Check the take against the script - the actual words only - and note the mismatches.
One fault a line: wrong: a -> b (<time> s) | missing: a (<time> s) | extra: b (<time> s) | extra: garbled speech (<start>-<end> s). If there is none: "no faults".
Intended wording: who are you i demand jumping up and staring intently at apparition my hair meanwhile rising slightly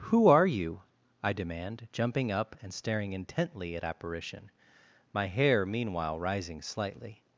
no faults